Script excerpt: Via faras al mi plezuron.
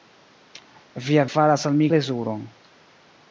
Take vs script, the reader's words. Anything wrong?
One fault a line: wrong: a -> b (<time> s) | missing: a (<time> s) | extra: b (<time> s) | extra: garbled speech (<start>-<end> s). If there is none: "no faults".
no faults